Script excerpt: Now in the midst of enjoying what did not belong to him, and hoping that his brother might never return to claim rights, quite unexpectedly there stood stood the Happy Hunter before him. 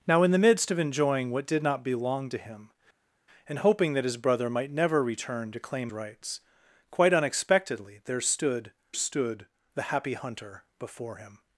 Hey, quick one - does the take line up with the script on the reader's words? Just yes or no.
yes